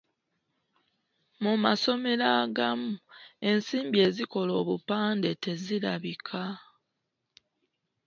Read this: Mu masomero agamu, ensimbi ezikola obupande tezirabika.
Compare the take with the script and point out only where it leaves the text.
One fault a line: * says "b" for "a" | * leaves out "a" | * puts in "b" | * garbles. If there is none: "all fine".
all fine